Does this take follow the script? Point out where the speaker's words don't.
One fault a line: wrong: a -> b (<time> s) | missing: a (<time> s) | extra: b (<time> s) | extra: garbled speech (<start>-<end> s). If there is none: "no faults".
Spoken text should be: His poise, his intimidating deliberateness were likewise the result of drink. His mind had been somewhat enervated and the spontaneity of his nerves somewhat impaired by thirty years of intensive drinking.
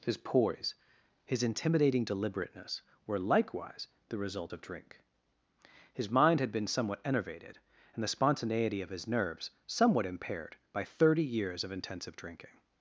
no faults